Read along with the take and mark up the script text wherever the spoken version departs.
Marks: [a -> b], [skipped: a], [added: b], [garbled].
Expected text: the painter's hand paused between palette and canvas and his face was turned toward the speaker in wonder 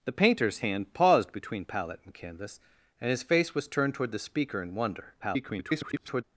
the painter's hand paused between palette and canvas and his face was turned toward the speaker in wonder [garbled]